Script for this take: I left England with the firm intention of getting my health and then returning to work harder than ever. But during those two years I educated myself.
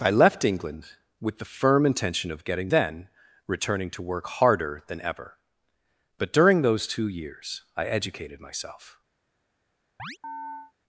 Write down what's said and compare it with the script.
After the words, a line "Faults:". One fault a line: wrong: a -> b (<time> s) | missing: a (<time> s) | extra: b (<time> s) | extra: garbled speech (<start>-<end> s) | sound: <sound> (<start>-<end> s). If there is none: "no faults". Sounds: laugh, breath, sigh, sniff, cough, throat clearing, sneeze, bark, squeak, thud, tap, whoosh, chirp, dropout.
I left England with the firm intention of getting then returning to work harder than ever. But during those two years I educated myself.
Faults:
missing: my health and (2.7 s)
sound: chirp (10.0-10.7 s)